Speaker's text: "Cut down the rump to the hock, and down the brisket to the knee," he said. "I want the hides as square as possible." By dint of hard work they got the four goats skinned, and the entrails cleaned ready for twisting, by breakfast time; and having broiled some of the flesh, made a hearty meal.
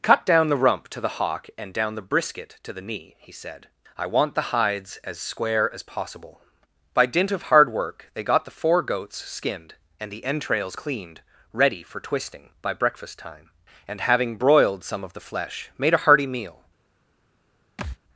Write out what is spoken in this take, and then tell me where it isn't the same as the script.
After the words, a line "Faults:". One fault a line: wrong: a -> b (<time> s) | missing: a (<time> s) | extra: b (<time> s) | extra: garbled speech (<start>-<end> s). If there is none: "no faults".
"Cut down the rump to the hock, and down the brisket to the knee," he said. "I want the hides as square as possible." By dint of hard work they got the four goats skinned, and the entrails cleaned ready for twisting, by breakfast time; and having broiled some of the flesh, made a hearty meal.
Faults:
no faults